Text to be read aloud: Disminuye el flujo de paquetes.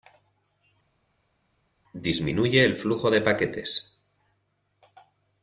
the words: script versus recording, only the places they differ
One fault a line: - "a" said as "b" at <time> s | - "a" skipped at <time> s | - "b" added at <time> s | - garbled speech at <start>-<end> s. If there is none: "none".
none